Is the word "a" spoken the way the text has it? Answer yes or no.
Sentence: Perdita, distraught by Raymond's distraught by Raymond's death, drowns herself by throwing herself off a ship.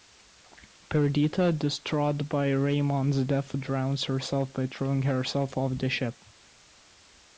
no